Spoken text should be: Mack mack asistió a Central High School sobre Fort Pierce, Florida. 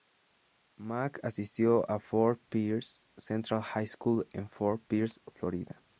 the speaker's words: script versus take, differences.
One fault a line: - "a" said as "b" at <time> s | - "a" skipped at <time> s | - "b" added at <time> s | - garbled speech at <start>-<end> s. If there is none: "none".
- "mack" skipped at 1.2 s
- "Fort Pierce" added at 2.0 s
- "sobre" said as "en" at 4.3 s